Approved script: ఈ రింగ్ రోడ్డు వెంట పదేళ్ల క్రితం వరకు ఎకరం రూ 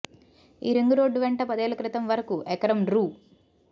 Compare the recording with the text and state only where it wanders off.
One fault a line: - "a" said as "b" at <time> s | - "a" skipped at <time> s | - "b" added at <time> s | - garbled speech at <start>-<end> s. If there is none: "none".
none